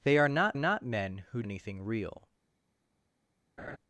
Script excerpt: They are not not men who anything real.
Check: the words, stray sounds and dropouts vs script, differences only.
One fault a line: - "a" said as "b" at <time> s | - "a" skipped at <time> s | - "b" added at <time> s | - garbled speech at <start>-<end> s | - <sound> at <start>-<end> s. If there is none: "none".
- laugh at 3.6-3.8 s